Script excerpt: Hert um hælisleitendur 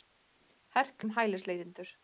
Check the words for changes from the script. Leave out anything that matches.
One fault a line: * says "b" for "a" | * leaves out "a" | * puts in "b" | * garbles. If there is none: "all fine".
all fine